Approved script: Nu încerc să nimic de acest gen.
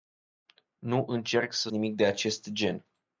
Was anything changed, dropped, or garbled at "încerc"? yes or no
no